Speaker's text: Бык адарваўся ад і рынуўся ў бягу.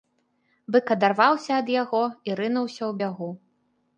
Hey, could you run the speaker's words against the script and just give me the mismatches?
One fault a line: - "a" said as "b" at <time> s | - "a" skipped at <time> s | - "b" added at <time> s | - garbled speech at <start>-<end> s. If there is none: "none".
- "яго" added at 1.8 s